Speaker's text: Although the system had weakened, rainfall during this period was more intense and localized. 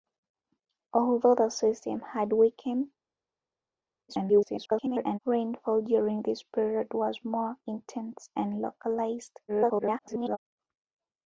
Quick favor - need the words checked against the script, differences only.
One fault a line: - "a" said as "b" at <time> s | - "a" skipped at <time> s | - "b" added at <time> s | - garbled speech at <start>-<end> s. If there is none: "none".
- garbled speech at 4.1-5.2 s
- garbled speech at 9.5-10.4 s